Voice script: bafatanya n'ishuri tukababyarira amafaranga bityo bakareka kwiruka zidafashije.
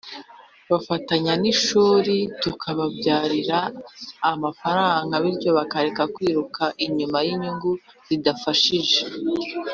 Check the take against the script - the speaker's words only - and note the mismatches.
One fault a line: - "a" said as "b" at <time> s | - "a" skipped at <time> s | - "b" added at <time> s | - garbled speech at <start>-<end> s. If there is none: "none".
- "inyuma y'inyungu" added at 6.8 s